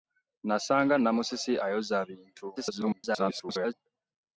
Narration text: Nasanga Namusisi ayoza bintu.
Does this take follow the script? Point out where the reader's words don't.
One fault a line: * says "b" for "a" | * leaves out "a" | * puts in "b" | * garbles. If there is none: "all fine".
* garbles